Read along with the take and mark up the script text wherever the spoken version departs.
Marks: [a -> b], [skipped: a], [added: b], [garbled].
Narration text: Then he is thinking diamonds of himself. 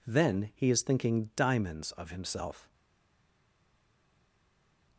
Then he is thinking diamonds of himself.